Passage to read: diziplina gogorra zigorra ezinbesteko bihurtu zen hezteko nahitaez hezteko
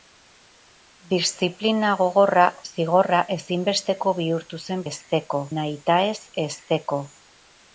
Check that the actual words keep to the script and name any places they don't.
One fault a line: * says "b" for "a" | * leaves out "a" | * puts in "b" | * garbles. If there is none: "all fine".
all fine